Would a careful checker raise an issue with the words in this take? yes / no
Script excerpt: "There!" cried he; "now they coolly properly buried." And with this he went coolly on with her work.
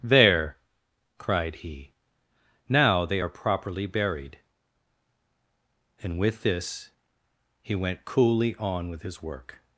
yes